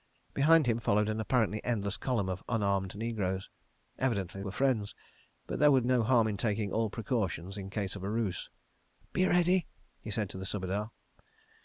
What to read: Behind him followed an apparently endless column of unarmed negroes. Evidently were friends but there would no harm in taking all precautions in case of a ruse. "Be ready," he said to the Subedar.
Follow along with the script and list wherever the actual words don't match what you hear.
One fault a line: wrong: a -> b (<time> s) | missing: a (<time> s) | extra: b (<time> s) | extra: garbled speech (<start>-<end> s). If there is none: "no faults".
no faults